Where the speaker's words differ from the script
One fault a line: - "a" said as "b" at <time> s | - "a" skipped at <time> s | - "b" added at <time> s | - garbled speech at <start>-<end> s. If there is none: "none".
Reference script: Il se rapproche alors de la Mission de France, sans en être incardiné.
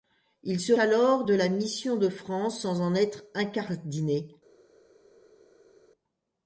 - "rapproche" skipped at 0.7 s